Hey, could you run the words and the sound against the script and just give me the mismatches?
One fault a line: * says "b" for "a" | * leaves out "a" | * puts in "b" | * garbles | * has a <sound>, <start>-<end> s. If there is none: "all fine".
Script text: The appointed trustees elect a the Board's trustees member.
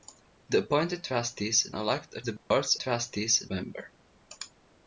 * has a dropout, 2.4-2.5 s